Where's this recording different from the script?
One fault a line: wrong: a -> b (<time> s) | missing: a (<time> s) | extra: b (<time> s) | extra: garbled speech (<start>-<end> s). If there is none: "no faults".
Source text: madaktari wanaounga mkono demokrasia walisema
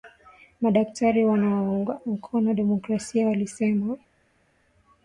no faults